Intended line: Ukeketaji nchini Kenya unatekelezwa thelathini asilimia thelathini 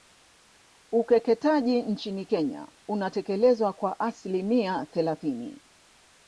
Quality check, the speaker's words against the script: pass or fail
fail